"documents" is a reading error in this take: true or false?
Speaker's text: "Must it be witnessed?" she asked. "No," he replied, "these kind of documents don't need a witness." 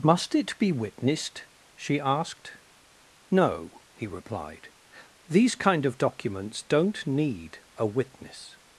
false